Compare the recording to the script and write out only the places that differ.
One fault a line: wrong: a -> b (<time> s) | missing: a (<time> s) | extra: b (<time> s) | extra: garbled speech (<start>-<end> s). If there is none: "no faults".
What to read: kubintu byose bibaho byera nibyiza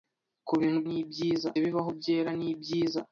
wrong: byose -> nibyiza (0.9 s)